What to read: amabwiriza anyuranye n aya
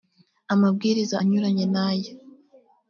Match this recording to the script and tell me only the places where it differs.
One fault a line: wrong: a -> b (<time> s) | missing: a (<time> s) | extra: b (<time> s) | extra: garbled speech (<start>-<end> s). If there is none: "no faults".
no faults